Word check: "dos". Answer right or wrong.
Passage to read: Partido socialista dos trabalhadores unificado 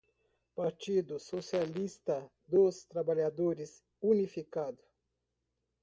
right